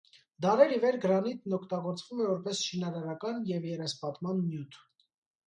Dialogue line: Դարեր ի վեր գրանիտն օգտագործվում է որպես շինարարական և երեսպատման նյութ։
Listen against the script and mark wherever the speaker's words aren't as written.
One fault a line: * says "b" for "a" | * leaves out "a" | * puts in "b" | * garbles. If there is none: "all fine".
all fine